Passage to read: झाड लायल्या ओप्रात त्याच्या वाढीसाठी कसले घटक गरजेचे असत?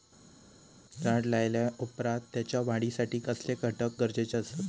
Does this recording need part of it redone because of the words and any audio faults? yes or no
no